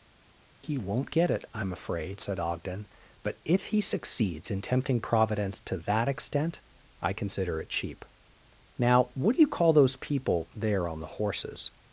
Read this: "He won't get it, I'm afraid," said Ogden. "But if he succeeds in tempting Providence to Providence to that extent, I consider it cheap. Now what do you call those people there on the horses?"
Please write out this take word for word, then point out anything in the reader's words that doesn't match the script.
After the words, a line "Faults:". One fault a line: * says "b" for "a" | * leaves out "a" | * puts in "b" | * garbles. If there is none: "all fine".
"He won't get it, I'm afraid," said Ogden. "But if he succeeds in tempting Providence to that extent, I consider it cheap. Now what do you call those people there on the horses?"
Faults:
* leaves out "Providence to"